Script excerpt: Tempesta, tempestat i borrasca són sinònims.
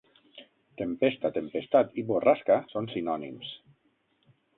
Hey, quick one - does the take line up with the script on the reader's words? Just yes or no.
yes